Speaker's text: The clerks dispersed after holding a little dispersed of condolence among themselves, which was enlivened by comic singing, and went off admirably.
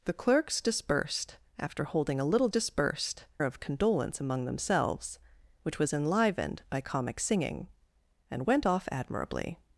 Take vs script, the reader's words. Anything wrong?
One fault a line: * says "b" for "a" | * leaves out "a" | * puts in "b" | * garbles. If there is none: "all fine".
all fine